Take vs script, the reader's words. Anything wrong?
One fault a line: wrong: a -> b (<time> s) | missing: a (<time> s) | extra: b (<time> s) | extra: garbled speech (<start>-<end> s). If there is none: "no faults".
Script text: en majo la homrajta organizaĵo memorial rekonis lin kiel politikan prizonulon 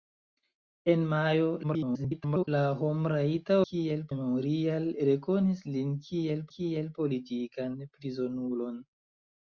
extra: garbled speech (1.6-2.5 s)
wrong: organizaĵo -> kiel (3.7 s)
extra: kiel (6.5 s)